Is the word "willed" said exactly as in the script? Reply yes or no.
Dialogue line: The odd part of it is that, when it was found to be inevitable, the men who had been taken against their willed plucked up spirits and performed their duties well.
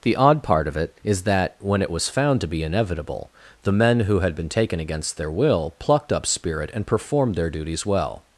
no